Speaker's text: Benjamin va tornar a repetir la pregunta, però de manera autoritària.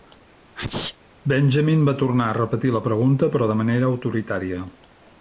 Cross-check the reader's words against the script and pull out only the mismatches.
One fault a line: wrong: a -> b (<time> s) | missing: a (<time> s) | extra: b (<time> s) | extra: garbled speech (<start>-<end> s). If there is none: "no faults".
no faults